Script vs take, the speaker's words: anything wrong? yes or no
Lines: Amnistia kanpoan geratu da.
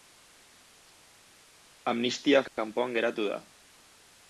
no